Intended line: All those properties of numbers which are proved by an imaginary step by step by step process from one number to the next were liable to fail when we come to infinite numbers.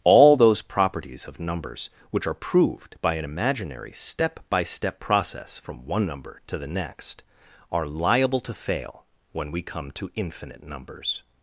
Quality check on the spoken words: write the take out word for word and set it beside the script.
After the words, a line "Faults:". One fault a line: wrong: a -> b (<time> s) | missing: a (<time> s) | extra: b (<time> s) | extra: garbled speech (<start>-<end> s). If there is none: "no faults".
All those properties of numbers which are proved by an imaginary step by step process from one number to the next are liable to fail when we come to infinite numbers.
Faults:
missing: by step (5.0 s)
wrong: were -> are (7.7 s)